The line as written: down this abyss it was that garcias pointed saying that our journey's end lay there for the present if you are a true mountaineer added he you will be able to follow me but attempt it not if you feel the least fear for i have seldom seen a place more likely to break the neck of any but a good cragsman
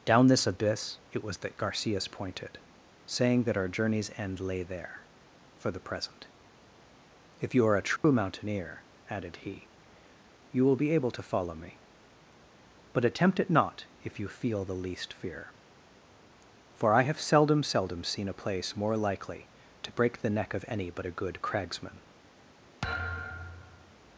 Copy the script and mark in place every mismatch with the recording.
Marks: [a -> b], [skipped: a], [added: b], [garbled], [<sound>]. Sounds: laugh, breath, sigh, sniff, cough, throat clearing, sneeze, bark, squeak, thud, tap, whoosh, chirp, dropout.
down this abyss it was that garcias pointed saying that our journey's end lay there for the present if you are a true [dropout] mountaineer added he you will be able to follow me but attempt it not if you feel the least fear for i have seldom [added: seldom] seen a place more likely to break the neck of any but a good cragsman [thud]